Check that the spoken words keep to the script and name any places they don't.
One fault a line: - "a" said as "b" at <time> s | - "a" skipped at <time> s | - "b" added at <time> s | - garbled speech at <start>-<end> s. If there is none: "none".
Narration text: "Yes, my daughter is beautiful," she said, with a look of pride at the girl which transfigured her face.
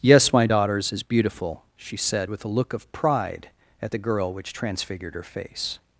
- "daughter" said as "daughters" at 0.4 s